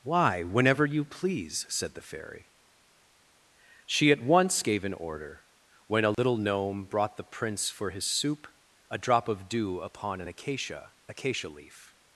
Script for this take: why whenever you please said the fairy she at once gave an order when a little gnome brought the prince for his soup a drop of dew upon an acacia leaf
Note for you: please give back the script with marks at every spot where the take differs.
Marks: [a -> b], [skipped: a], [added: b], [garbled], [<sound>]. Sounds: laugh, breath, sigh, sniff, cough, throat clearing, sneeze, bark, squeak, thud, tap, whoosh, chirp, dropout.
why whenever you please said the fairy she at once gave an order when a little [dropout] gnome brought the prince for his soup a drop of dew upon an acacia [added: acacia] leaf